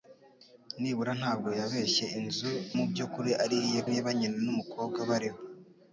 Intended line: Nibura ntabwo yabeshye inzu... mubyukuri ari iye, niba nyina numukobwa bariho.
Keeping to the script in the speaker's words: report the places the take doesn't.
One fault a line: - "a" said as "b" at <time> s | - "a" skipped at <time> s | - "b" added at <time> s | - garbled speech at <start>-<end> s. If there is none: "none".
none